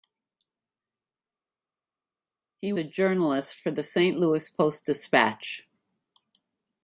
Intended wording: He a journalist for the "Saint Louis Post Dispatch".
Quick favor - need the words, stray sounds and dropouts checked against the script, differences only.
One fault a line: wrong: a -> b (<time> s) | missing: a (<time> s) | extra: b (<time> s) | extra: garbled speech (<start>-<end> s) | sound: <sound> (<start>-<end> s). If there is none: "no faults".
no faults